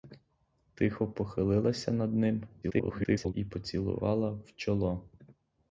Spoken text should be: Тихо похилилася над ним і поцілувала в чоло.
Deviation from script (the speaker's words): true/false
true